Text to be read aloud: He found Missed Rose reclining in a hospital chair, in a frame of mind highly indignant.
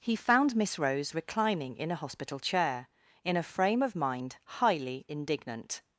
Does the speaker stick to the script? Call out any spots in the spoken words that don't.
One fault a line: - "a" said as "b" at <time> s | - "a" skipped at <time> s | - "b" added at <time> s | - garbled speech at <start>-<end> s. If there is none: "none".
- "Missed" said as "Miss" at 0.6 s